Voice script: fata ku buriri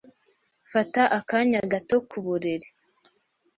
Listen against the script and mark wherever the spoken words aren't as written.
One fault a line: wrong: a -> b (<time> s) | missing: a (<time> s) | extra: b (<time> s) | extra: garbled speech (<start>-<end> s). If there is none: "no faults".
extra: akanya gato (1.2 s)